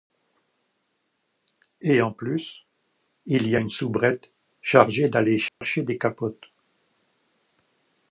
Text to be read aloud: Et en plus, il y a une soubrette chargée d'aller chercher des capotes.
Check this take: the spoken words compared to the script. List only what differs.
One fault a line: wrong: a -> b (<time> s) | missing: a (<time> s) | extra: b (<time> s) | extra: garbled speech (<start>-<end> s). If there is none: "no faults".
no faults